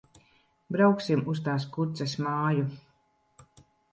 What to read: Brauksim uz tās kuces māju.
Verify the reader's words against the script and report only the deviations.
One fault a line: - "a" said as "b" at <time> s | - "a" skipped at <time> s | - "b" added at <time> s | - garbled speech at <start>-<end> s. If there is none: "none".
none